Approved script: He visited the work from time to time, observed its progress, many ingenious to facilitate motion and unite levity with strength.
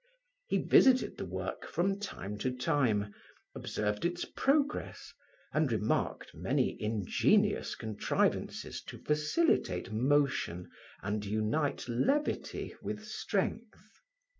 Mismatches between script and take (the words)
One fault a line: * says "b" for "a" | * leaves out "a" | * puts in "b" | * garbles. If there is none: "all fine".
* puts in "and remarked"
* puts in "contrivances"